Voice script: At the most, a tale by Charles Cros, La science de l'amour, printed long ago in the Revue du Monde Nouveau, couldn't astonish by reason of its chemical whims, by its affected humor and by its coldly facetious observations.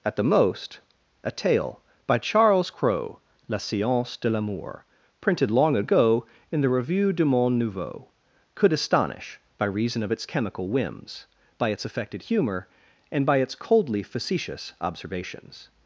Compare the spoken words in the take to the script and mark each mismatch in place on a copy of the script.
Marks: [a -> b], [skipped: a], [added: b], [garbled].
At the most, a tale by Charles Cros, La science de l'amour, printed long ago in the Revue du Monde Nouveau, [couldn't -> could] astonish by reason of its chemical whims, by its affected humor and by its coldly facetious observations.